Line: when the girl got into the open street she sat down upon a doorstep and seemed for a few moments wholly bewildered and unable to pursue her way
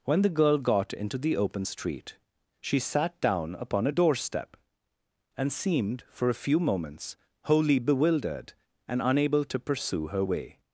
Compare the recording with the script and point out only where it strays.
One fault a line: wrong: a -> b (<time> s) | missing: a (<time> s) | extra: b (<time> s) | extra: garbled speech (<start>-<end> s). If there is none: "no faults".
no faults